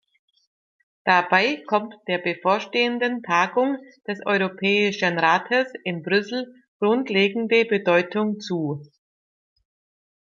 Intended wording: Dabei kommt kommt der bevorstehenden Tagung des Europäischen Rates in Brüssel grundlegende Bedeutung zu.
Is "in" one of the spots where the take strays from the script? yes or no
no